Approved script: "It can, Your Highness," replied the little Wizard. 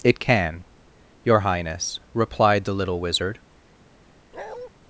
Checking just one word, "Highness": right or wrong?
right